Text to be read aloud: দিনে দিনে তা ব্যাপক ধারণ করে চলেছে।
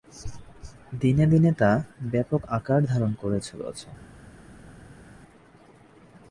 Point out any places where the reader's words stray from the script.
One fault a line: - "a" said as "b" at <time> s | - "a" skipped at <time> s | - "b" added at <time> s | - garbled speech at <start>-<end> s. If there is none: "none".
- "আকার" added at 2.5 s